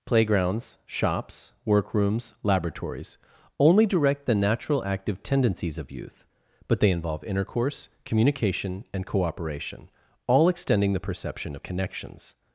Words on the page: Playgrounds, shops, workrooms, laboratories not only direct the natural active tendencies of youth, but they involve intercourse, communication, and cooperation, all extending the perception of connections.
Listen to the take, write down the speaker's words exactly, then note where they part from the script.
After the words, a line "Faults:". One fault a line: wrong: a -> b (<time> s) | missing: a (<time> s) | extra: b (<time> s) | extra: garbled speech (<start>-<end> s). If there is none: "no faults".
Playgrounds, shops, workrooms, laboratories only direct the natural active tendencies of youth, but they involve intercourse, communication, and cooperation, all extending the perception of connections.
Faults:
missing: not (3.2 s)